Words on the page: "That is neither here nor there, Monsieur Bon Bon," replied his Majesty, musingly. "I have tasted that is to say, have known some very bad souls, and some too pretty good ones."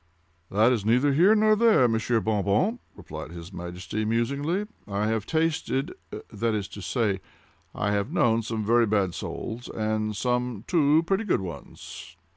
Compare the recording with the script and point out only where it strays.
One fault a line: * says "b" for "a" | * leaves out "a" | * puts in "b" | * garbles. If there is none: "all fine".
* puts in "I"